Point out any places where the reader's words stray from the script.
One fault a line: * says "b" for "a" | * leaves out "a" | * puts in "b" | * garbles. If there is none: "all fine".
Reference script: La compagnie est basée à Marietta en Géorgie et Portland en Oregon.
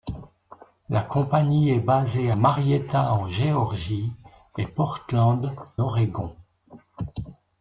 * leaves out "à"
* leaves out "en"